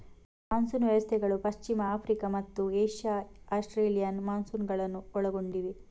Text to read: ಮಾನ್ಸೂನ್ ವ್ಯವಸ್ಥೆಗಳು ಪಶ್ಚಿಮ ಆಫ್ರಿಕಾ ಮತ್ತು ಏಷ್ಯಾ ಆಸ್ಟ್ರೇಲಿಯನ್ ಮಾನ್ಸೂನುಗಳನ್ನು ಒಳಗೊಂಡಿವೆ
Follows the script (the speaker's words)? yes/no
yes